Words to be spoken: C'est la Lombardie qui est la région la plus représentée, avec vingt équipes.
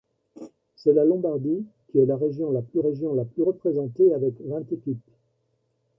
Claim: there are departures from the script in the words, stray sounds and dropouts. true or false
true